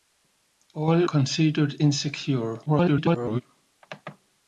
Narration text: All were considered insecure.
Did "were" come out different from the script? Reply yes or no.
yes